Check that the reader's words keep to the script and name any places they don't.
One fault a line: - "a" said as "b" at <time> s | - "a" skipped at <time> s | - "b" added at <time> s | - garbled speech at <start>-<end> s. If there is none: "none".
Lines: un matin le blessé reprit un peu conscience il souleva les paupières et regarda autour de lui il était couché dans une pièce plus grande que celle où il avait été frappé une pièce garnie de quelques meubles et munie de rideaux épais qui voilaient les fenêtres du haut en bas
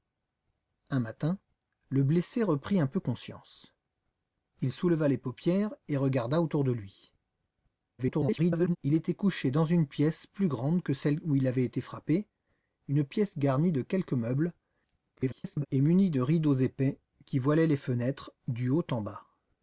- garbled speech at 8.0-8.8 s
- garbled speech at 15.2-15.7 s